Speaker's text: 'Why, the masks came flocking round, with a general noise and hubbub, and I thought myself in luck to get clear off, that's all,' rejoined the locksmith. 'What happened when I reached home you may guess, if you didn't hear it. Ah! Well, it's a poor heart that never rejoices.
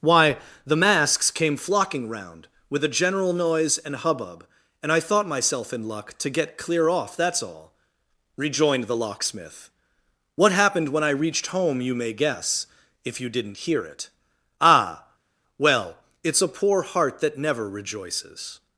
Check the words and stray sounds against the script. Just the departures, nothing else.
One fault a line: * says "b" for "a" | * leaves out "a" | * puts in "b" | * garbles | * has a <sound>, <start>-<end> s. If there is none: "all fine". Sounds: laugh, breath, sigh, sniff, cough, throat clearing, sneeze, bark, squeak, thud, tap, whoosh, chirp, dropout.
all fine